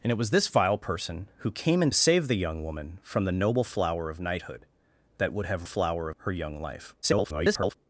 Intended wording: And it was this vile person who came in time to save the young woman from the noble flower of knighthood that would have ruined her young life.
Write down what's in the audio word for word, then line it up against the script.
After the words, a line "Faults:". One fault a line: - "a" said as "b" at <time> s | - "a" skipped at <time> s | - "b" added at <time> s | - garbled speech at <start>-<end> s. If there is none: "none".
And it was this vile person who came in save the young woman from the noble flower of knighthood that would have flower her young life. [garbled]
Faults:
- "time to" skipped at 1.9 s
- "ruined" said as "flower" at 5.6 s
- garbled speech at 7.0-7.7 s